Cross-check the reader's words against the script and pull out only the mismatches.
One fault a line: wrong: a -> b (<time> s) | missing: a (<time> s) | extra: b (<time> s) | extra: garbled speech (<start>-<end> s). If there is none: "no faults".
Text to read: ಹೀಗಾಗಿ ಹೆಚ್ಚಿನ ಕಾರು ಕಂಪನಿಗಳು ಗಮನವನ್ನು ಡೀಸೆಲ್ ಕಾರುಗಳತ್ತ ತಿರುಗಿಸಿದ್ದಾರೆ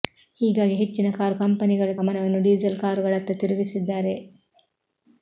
no faults